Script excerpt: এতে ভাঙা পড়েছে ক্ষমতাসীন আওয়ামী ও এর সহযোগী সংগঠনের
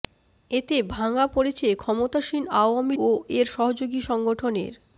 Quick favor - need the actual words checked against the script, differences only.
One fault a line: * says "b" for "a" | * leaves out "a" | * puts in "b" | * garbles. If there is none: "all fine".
all fine